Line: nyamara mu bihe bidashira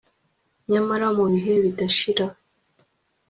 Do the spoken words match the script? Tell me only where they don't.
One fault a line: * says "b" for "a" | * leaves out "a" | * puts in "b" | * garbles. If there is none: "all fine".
all fine